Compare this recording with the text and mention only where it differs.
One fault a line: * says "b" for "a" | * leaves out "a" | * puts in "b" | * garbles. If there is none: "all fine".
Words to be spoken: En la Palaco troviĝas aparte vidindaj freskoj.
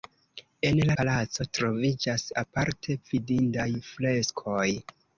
all fine